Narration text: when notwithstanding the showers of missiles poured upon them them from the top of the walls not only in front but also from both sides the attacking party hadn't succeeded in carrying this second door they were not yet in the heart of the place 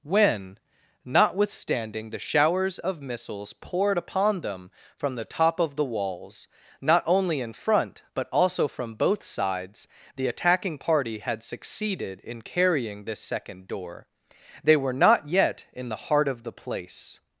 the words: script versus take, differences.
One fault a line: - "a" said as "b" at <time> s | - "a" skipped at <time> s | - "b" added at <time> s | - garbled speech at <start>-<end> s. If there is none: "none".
- "them" skipped at 4.7 s
- "hadn't" said as "had" at 11.2 s